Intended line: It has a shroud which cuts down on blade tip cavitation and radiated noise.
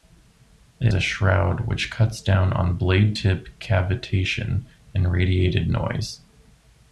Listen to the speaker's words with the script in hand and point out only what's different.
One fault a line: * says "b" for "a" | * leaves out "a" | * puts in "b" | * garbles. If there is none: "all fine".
* leaves out "has"